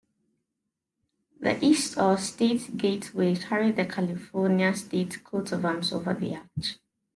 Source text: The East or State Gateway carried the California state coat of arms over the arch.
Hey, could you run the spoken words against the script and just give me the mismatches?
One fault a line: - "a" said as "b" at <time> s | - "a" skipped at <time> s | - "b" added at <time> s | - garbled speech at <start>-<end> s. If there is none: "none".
none